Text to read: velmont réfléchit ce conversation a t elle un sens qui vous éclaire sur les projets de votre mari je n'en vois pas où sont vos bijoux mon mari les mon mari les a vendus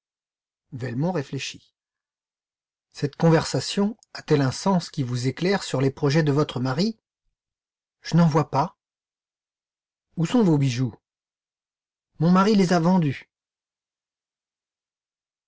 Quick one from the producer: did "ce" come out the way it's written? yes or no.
no